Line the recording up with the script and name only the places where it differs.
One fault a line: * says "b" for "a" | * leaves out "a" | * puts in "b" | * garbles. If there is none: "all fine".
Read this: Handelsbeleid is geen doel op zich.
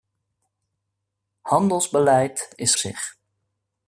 * leaves out "geen doel op"